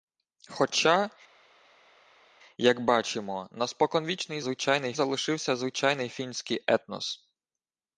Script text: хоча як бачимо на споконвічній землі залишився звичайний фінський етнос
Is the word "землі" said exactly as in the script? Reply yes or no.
no